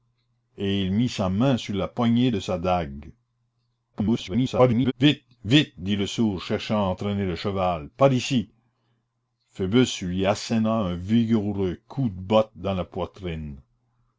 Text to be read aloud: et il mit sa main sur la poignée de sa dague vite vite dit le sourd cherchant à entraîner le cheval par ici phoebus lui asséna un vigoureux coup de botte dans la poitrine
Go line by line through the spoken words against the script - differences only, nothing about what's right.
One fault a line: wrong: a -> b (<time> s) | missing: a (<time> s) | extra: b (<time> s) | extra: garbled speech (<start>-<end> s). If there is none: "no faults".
extra: garbled speech (3.9-4.9 s)